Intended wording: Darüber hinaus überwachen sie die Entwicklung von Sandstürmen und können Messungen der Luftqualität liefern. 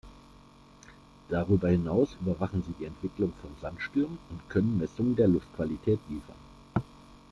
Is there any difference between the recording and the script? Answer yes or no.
no